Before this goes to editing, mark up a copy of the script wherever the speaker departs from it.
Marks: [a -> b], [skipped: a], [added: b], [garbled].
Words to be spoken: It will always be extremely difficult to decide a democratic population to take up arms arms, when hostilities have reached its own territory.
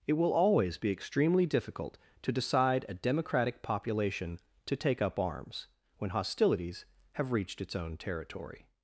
It will always be extremely difficult to decide a democratic population to take up arms [skipped: arms,] when hostilities have reached its own territory.